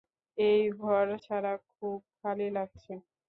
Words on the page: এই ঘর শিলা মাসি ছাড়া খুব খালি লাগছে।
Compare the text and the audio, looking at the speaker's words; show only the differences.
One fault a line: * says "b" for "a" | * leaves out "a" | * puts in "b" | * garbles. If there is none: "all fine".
* leaves out "শিলা মাসি"